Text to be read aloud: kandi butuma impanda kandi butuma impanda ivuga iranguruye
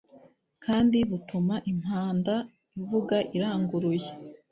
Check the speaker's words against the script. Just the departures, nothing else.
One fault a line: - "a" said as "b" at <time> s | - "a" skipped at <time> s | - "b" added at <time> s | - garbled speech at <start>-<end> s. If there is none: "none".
- "kandi butuma impanda" skipped at 2.4 s